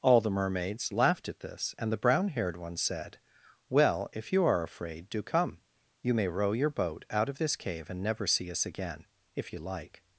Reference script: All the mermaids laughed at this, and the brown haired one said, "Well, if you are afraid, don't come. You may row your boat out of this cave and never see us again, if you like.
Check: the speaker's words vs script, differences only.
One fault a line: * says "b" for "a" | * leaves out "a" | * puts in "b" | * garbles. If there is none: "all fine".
* says "do" for "don't"